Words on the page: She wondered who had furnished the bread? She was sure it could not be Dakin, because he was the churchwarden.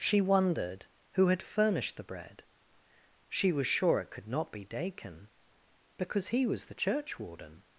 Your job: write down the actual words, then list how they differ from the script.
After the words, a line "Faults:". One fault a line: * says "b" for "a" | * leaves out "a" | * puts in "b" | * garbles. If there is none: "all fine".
She wondered who had furnished the bread? She was sure it could not be Dakin, because he was the churchwarden.
Faults:
all fine